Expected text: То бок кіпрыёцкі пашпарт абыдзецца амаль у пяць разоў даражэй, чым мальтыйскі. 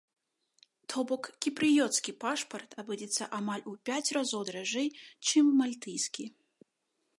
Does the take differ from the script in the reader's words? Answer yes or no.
no